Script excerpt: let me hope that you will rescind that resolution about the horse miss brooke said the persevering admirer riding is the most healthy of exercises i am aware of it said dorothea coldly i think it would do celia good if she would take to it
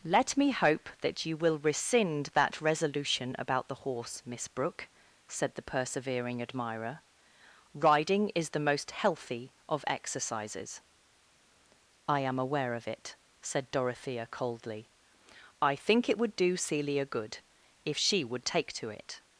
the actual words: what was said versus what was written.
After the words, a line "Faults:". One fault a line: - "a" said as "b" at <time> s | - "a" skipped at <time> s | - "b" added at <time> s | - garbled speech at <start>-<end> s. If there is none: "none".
let me hope that you will rescind that resolution about the horse miss brooke said the persevering admirer riding is the most healthy of exercises i am aware of it said dorothea coldly i think it would do celia good if she would take to it
Faults:
none